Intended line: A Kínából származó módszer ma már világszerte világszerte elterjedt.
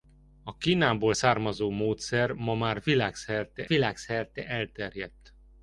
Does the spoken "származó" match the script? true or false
true